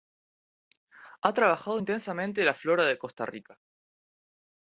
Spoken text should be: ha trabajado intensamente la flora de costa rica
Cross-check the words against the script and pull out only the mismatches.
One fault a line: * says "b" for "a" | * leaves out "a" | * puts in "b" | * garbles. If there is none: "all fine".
all fine